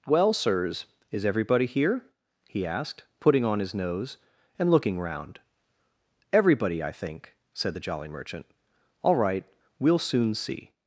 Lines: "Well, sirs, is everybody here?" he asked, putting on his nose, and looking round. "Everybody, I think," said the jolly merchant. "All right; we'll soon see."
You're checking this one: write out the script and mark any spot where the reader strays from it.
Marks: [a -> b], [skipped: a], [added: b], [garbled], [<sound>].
"Well, sirs, is everybody here?" he asked, putting on his nose, and looking round. "Everybody, I think," said the jolly merchant. "All right; we'll soon see."